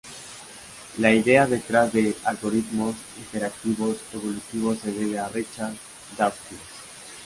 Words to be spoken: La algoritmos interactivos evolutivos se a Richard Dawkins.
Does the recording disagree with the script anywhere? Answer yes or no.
yes